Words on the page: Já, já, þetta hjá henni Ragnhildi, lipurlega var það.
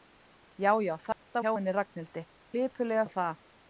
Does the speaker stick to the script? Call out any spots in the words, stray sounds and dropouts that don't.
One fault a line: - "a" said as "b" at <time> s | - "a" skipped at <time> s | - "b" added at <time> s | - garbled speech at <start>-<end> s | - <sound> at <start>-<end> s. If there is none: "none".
- dropout at 1.1-1.3 s